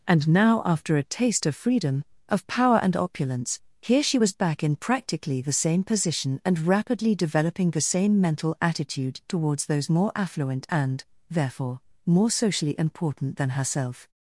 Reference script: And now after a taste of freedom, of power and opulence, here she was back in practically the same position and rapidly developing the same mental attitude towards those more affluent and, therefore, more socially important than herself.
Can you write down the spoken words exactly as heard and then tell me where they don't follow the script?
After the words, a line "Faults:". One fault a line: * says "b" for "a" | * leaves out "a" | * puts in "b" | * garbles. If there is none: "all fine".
And now after a taste of freedom, of power and opulence, here she was back in practically the same position and rapidly developing the same mental attitude towards those more affluent and, therefore, more socially important than herself.
Faults:
all fine